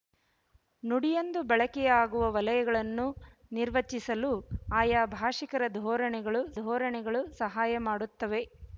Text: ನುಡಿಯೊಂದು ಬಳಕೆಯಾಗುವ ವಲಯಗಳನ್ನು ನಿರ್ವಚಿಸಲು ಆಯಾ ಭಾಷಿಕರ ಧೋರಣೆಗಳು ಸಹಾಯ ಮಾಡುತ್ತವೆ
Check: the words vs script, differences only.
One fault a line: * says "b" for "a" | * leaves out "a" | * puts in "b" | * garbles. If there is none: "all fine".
* puts in "ಧೋರಣೆಗಳು"